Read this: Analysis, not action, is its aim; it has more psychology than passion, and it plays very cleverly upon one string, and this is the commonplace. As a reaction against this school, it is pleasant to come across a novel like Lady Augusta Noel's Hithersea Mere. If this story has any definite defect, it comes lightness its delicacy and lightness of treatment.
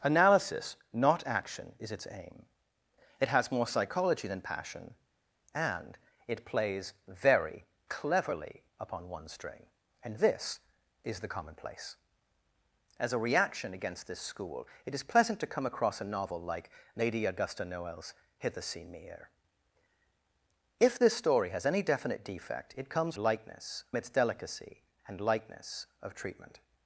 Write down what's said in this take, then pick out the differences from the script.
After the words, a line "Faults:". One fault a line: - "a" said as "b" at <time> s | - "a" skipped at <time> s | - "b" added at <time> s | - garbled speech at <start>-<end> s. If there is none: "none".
Analysis, not action, is its aim; it has more psychology than passion, and it plays very cleverly upon one string, and this is the commonplace. As a reaction against this school, it is pleasant to come across a novel like Lady Augusta Noel's Hithersea Mere. If this story has any definite defect, it comes lightness its delicacy and lightness of treatment.
Faults:
none